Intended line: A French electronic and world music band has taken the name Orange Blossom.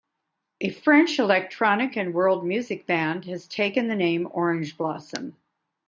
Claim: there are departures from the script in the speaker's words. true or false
false